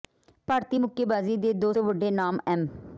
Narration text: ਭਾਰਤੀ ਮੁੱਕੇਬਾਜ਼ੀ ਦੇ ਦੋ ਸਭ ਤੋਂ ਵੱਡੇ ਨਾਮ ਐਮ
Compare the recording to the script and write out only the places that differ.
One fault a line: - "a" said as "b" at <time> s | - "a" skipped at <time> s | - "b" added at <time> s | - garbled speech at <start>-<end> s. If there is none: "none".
- "ਸਭ" skipped at 1.7 s